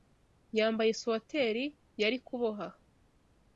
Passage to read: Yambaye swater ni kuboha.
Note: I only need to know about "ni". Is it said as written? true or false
false